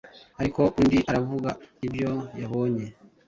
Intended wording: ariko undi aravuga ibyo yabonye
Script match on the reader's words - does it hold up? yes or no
yes